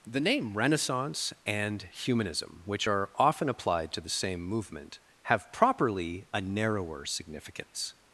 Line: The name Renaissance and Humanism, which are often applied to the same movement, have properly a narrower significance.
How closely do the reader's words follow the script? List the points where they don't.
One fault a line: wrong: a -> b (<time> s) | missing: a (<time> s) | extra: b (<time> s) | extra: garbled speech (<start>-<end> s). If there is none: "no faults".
no faults